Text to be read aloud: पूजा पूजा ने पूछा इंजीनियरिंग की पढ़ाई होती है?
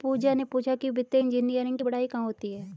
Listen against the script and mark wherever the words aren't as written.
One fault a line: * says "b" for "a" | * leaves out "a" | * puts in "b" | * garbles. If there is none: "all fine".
* leaves out "पूजा"
* puts in "कि वित्तीय"
* puts in "कहाँ"